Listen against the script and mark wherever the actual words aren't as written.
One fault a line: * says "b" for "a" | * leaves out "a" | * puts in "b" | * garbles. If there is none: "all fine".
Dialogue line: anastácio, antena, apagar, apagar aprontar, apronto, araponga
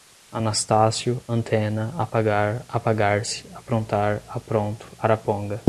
* puts in "se"